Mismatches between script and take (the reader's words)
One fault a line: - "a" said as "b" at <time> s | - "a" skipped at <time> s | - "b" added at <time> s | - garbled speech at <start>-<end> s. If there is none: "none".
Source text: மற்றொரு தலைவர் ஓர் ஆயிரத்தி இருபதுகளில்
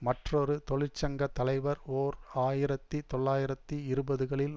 - "தொழிற்சங்க" added at 0.7 s
- "தொள்ளாயிரத்தி" added at 3.1 s